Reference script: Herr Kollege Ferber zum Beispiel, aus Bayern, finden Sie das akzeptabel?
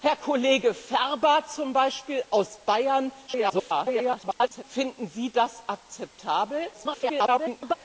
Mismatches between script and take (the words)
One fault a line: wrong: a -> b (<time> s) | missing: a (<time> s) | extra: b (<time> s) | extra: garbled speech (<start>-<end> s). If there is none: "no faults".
extra: garbled speech (3.3-4.6 s)
extra: garbled speech (6.7-7.7 s)